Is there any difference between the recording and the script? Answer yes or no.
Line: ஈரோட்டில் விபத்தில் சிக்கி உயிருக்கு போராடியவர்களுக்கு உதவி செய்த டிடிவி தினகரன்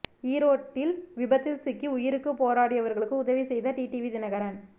no